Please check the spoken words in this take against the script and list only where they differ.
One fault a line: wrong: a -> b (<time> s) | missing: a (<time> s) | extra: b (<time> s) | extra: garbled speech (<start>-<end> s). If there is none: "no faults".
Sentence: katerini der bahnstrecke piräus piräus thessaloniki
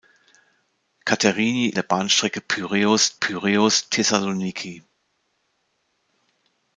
no faults